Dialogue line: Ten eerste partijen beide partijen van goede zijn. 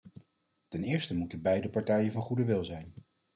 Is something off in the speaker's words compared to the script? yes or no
yes